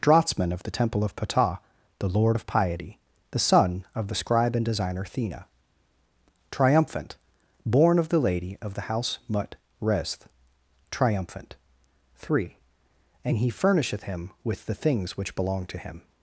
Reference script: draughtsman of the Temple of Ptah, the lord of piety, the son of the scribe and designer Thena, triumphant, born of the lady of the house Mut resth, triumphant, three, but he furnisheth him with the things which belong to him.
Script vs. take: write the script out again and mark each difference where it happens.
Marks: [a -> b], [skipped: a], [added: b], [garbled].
draughtsman of the Temple of Ptah, the lord of piety, the son of the scribe and designer Thena, triumphant, born of the lady of the house Mut resth, triumphant, three, [but -> and] he furnisheth him with the things which belong to him.